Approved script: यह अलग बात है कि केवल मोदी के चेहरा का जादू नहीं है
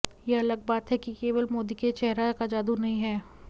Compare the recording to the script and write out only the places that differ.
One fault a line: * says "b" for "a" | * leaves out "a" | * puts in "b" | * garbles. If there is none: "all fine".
all fine